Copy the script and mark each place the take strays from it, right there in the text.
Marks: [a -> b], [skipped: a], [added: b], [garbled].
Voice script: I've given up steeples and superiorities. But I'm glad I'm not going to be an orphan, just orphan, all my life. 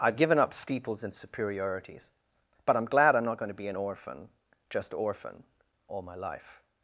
I've given up steeples and superiorities. But I'm glad I'm not going to be an orphan, just orphan, all my life.